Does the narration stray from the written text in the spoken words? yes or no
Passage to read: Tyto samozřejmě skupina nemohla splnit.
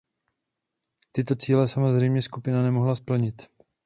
yes